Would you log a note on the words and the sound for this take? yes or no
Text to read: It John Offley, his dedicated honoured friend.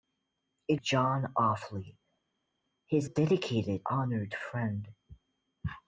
no